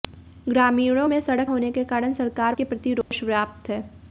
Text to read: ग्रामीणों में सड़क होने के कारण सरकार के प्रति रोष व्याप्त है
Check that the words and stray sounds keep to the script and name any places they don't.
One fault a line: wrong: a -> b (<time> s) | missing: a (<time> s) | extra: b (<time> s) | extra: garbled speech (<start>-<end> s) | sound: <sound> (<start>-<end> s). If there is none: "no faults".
sound: dropout (3.0-3.1 s)